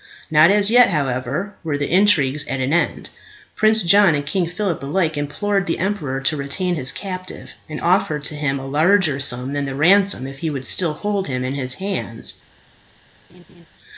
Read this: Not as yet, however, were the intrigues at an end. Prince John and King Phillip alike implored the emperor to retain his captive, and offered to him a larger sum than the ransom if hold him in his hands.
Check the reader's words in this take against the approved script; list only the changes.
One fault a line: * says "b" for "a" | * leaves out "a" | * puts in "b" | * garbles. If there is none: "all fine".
* puts in "he would still"